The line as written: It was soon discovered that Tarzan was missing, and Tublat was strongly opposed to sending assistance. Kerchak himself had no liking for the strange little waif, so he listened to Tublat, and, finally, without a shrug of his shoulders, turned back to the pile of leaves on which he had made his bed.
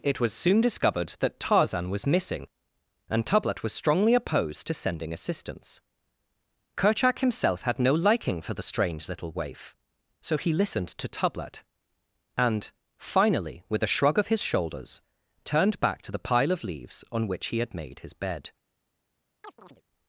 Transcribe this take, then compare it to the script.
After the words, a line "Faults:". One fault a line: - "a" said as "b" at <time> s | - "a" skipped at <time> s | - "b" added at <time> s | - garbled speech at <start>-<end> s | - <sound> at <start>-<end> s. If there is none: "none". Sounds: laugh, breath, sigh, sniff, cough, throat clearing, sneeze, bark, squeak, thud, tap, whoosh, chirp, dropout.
It was soon discovered that Tarzan was missing, and Tublat was strongly opposed to sending assistance. Kerchak himself had no liking for the strange little waif, so he listened to Tublat, and, finally, with a shrug of his shoulders, turned back to the pile of leaves on which he had made his bed.
Faults:
- "without" said as "with" at 13.7 s
- chirp at 19.4-19.8 s